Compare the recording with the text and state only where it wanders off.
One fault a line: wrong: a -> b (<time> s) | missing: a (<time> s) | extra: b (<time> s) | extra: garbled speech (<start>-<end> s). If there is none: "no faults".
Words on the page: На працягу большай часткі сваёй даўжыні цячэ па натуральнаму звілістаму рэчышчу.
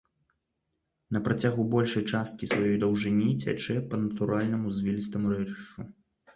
no faults